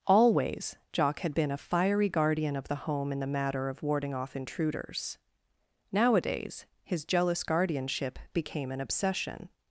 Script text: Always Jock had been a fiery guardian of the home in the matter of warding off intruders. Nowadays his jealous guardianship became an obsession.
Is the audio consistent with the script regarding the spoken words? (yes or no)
yes